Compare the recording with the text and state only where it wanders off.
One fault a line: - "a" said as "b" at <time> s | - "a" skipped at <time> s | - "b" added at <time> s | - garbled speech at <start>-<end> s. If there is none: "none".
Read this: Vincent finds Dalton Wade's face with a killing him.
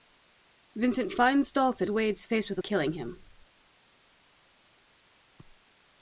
none